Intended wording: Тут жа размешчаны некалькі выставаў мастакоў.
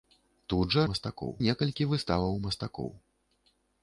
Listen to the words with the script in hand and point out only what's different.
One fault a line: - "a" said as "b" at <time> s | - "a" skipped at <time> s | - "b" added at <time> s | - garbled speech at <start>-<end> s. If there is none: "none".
- "размешчаны" said as "мастакоў" at 0.9 s